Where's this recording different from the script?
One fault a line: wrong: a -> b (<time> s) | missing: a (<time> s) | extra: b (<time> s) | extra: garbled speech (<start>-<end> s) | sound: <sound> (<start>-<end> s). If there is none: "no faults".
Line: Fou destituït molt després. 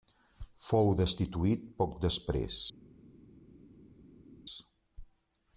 wrong: molt -> poc (1.8 s)